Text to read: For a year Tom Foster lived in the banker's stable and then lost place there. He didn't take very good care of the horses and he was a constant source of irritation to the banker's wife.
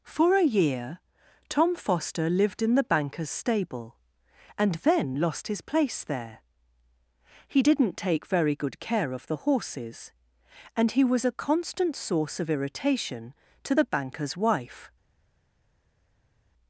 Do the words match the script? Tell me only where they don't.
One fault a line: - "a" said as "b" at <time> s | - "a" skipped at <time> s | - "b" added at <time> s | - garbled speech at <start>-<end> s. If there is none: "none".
- "his" added at 5.5 s